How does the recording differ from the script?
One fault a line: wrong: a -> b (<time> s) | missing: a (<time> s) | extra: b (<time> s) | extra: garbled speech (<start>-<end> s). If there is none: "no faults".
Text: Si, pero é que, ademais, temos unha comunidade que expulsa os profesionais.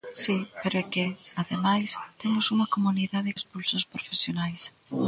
missing: que (3.3 s)